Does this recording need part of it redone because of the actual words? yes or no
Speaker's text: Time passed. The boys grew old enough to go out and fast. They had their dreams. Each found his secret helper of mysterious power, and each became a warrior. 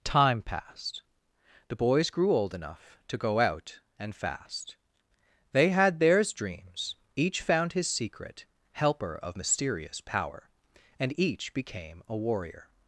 yes